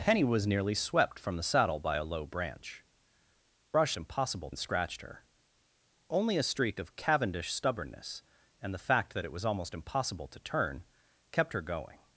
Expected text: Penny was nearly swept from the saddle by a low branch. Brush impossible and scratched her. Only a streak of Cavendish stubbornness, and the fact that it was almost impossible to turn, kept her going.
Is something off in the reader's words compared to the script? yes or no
no